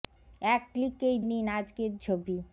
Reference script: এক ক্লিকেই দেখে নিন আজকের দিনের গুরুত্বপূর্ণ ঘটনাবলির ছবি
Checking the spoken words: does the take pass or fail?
fail